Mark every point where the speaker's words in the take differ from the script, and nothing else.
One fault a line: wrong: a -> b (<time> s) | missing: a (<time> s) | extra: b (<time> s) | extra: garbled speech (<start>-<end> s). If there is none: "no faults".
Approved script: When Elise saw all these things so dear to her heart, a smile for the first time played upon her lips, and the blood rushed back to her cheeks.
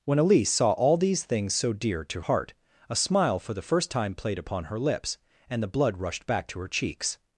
missing: her (2.2 s)